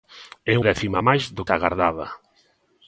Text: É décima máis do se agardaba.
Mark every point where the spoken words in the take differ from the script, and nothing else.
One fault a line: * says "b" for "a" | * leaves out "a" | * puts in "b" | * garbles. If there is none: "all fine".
all fine